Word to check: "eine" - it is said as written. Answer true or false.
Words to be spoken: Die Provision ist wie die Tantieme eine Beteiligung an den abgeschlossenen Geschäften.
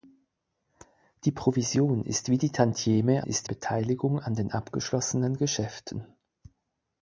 false